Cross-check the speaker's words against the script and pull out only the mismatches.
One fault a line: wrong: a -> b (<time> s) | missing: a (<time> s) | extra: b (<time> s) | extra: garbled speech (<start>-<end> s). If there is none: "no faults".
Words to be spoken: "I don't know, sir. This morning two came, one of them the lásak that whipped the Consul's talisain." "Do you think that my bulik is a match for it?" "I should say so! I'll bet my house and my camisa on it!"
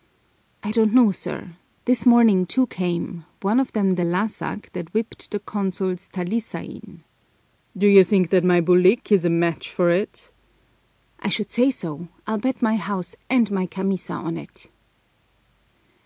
no faults